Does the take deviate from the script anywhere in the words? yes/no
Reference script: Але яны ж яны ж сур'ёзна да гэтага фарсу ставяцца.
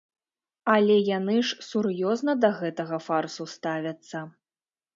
yes